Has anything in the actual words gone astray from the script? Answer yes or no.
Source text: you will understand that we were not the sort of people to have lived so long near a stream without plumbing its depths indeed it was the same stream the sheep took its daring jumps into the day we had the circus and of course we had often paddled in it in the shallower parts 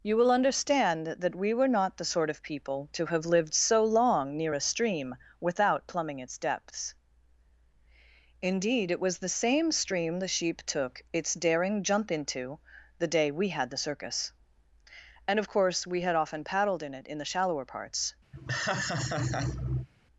yes